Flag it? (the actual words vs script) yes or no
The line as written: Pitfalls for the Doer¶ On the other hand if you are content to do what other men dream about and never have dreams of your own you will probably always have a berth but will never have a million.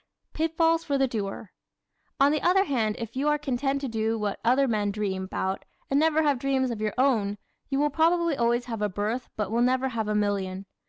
no